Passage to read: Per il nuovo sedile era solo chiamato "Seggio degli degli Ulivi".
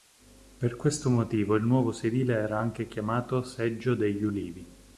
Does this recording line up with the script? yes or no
no